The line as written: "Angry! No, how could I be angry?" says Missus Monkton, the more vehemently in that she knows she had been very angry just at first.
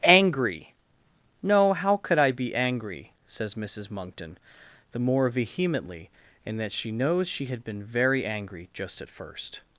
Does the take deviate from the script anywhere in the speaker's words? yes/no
no